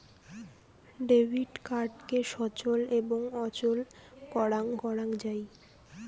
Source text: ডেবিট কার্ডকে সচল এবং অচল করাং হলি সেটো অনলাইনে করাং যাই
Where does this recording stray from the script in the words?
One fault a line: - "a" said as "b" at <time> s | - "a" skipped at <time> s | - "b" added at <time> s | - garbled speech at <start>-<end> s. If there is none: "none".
- "হলি সেটো অনলাইনে" skipped at 4.7 s